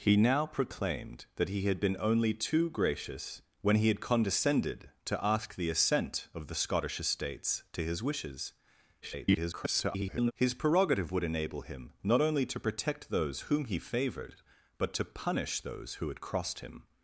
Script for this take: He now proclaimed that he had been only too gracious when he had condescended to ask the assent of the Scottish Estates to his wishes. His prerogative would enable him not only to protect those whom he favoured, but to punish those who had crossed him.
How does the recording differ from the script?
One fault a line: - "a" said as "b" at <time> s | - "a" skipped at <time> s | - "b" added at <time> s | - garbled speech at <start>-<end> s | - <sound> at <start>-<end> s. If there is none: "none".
- garbled speech at 9.0-10.3 s